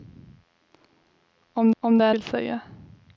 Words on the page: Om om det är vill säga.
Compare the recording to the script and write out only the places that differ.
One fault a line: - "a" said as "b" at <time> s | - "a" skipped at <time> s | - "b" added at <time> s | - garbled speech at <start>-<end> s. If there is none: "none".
none